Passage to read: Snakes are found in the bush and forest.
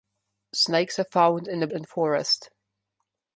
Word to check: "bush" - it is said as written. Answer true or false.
false